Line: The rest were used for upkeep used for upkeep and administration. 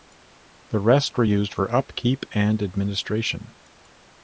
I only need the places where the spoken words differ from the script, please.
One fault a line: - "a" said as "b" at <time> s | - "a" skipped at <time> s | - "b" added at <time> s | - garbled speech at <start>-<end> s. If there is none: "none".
- "used for upkeep" skipped at 2.3 s